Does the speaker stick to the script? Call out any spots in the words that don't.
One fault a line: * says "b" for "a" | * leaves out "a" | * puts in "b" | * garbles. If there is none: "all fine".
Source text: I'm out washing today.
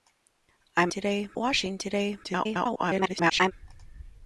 * says "today" for "out"
* garbles